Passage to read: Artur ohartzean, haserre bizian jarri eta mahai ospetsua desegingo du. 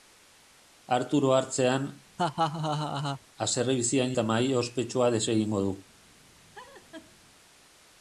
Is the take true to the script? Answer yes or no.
no